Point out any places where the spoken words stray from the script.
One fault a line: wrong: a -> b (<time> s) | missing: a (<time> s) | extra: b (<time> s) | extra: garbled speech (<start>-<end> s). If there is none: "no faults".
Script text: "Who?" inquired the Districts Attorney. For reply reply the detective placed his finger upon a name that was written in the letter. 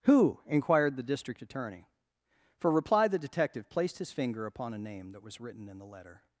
wrong: Districts -> District (1.0 s)
missing: reply (3.1 s)